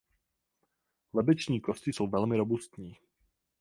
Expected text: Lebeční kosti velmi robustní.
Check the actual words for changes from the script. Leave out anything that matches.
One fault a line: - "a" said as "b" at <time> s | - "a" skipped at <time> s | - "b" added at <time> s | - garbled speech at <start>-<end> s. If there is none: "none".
- "jsou" added at 1.9 s